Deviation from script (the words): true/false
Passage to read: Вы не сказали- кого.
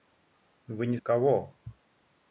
true